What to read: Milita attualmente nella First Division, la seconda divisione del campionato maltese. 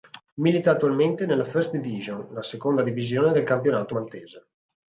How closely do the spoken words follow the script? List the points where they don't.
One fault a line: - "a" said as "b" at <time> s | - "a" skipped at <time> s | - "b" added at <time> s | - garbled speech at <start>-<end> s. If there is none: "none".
none